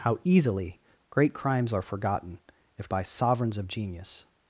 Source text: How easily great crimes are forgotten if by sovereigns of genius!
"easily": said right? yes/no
yes